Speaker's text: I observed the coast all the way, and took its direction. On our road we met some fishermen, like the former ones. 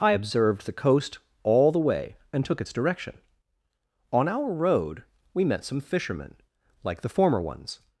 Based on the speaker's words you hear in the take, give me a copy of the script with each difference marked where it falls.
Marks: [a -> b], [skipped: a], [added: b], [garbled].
I observed the coast all the way, and took its direction. On our road we met some fishermen, like the former ones.